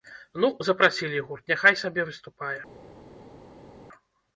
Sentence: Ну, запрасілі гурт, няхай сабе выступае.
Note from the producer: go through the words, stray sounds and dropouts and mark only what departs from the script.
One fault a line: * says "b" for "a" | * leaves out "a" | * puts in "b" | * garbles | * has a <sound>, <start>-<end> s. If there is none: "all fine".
all fine